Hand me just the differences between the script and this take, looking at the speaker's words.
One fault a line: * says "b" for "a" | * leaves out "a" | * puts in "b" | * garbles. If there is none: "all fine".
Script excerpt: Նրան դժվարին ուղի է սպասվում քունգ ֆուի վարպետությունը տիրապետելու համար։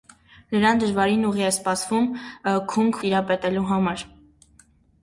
* leaves out "ֆուի վարպետությունը"